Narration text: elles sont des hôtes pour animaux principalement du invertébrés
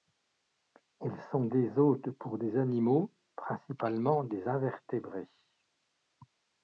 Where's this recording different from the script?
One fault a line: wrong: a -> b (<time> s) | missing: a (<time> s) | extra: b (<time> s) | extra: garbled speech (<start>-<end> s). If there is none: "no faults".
extra: des (2.4 s)
wrong: du -> des (4.2 s)